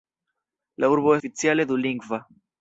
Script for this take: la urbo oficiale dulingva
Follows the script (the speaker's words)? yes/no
yes